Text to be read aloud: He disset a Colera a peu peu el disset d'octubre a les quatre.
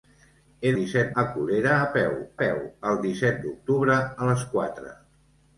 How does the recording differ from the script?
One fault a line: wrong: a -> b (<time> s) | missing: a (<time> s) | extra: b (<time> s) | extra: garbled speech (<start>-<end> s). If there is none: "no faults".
no faults